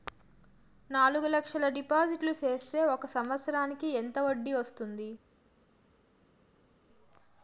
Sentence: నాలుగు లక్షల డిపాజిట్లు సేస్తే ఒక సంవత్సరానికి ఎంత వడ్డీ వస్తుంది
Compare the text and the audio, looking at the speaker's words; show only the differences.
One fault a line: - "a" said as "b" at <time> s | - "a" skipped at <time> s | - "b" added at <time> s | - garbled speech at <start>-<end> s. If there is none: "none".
none